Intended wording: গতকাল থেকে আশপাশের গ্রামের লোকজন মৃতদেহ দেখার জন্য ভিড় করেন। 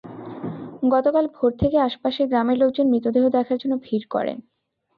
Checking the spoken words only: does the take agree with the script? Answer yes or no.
no